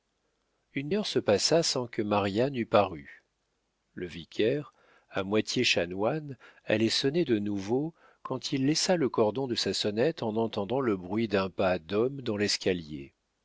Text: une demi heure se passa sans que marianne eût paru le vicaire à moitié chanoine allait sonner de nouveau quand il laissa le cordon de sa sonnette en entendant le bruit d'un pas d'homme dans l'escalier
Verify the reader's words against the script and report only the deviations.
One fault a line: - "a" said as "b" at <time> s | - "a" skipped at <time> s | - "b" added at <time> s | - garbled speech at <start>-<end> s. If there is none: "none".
- "demi" skipped at 0.9 s